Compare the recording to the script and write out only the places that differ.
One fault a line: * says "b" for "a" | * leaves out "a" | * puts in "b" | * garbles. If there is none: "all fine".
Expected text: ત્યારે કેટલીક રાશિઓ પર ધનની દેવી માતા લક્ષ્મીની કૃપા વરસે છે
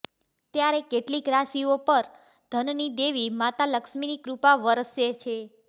all fine